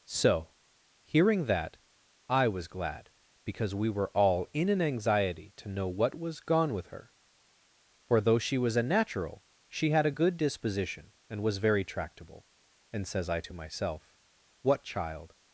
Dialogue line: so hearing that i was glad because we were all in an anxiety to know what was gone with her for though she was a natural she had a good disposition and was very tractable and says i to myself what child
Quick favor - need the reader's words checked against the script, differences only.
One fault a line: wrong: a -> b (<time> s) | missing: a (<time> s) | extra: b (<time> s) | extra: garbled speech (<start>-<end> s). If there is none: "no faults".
no faults